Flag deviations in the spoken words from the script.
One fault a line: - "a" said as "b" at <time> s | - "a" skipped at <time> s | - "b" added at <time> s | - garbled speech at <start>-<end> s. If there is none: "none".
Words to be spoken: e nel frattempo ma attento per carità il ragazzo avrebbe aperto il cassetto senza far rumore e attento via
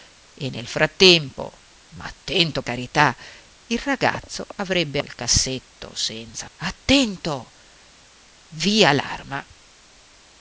- "per" skipped at 2.6 s
- "aperto" skipped at 5.0 s
- "far rumore e" skipped at 6.5 s